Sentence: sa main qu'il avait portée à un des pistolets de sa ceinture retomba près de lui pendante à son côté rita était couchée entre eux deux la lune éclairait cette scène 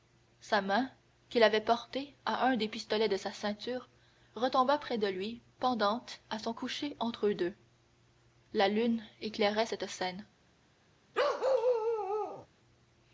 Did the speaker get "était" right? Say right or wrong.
wrong